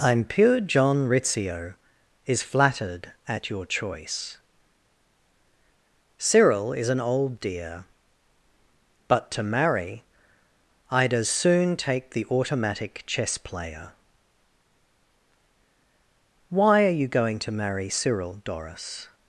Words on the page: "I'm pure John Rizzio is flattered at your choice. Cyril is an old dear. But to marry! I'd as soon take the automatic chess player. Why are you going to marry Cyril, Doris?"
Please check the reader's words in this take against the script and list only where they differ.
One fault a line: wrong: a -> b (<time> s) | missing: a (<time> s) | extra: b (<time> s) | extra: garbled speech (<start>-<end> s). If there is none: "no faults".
no faults